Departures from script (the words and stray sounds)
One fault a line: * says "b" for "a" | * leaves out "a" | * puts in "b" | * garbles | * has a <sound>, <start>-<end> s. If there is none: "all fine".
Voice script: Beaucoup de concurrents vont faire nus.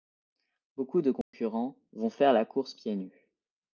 * has a dropout, 1.2-1.3 s
* puts in "la course pieds"